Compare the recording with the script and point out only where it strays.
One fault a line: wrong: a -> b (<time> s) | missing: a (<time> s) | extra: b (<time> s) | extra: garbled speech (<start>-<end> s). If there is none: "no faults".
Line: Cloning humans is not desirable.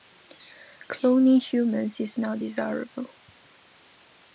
no faults